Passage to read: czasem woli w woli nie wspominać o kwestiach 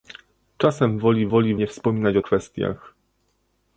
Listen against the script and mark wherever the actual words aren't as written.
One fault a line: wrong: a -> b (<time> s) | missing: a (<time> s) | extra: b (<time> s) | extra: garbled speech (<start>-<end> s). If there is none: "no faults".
no faults